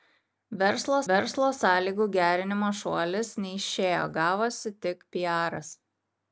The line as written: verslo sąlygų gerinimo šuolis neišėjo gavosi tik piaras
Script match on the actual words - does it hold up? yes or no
no